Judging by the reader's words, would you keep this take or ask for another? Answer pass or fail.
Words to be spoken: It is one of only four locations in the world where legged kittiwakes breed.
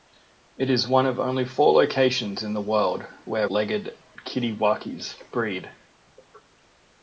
pass